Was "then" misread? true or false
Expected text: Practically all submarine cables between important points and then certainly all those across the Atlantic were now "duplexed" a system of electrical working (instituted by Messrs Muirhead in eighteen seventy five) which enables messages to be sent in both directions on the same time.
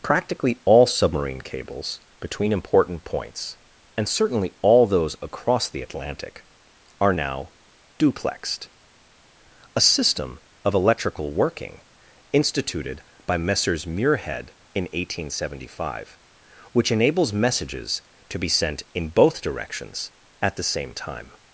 true